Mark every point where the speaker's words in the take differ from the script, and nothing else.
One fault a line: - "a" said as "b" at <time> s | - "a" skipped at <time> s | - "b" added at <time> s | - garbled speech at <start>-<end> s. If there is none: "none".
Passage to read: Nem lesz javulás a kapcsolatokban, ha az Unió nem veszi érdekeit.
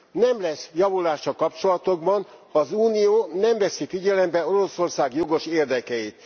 - "figyelembe Oroszország jogos" added at 3.9 s